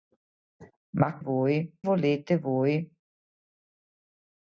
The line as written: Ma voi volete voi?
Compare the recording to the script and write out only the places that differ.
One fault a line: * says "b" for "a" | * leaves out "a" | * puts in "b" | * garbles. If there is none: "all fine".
all fine